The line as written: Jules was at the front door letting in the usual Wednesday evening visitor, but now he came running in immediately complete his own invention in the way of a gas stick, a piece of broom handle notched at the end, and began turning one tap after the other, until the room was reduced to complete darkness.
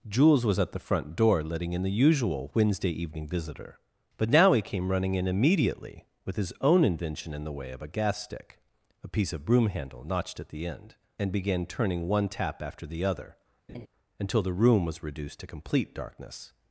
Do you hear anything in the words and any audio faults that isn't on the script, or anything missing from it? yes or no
yes